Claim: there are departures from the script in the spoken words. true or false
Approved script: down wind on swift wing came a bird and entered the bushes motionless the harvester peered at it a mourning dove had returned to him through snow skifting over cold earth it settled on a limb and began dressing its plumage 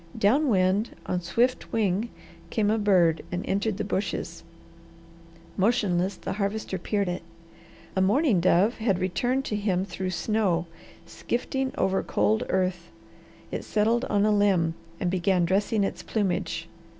true